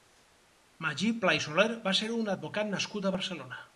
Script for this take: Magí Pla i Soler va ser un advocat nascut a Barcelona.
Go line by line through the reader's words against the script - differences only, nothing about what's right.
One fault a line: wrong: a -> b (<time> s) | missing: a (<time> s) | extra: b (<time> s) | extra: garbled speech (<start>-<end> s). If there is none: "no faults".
no faults